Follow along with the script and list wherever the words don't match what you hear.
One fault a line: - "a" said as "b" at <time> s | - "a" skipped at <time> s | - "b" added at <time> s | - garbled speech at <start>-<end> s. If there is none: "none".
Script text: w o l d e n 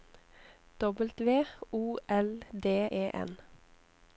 none